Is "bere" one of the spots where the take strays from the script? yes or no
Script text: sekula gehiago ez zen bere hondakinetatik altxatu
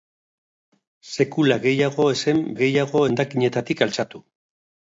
yes